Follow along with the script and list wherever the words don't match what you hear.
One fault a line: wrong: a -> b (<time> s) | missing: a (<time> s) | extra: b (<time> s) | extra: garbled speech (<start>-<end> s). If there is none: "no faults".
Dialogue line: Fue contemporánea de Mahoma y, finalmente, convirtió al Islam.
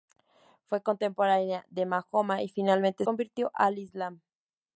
no faults